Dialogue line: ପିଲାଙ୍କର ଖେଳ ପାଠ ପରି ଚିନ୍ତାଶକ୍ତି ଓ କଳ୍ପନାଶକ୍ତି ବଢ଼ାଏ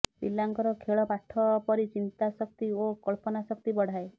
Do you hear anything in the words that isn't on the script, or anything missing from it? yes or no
no